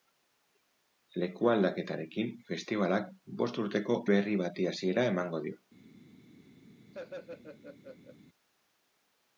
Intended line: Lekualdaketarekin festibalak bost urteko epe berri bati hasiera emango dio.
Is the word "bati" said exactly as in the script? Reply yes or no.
yes